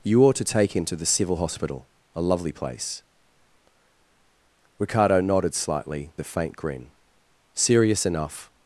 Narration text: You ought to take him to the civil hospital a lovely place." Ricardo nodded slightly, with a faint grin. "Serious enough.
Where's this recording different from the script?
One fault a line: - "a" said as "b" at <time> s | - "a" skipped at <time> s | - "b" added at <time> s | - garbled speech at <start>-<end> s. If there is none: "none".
- "with" skipped at 6.1 s